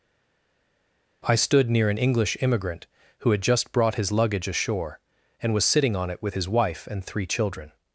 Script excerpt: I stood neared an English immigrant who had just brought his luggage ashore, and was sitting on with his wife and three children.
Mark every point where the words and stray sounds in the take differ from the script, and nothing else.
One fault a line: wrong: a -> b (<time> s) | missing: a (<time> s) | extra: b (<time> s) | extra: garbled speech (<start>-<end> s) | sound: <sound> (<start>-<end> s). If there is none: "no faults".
wrong: neared -> near (1.7 s)
extra: it (6.1 s)